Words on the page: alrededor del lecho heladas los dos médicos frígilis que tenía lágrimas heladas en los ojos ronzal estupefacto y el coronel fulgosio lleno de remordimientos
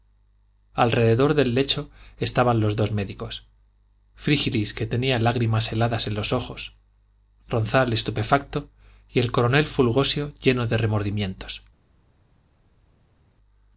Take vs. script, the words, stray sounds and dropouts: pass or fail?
fail